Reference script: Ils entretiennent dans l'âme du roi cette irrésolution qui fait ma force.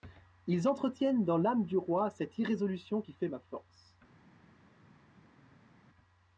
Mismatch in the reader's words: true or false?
false